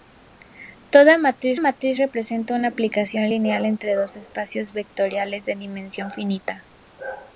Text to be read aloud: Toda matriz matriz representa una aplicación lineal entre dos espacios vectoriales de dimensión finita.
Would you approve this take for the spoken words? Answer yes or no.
yes